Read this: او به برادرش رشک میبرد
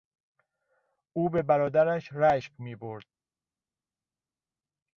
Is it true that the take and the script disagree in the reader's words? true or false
false